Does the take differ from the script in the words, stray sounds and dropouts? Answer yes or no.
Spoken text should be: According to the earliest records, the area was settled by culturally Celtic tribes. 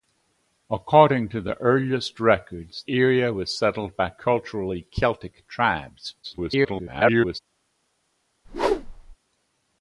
yes